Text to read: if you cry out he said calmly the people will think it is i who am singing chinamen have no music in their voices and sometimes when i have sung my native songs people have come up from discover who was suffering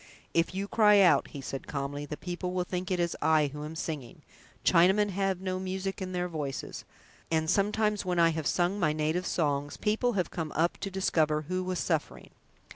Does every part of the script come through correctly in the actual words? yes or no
no